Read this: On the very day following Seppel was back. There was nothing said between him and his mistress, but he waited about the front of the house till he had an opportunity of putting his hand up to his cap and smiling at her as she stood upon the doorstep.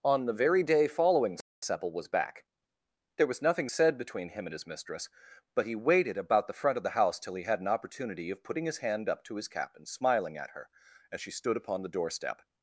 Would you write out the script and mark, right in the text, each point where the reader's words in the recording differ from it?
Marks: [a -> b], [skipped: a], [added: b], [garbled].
On the very day following Seppel was back. There was nothing said between him and his mistress, but he waited about the front of the house till he had an opportunity of putting his hand up to his cap and smiling at her as she stood upon the doorstep.